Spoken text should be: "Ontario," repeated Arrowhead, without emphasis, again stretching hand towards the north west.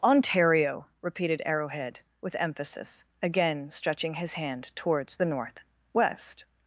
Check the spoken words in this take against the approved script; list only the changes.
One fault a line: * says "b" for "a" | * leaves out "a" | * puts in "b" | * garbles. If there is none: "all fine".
* says "with" for "without"
* puts in "his"